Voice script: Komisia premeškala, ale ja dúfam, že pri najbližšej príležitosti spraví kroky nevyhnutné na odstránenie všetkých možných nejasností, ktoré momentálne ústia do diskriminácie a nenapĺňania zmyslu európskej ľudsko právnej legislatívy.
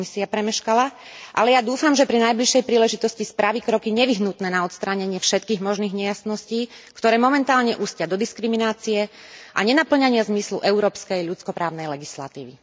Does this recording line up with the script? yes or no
yes